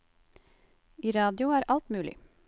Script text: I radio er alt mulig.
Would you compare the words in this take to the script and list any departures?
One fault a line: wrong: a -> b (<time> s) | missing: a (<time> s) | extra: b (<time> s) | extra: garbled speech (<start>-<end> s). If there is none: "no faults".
no faults